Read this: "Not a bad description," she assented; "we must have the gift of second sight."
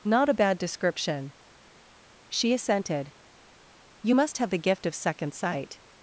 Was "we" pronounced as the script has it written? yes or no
no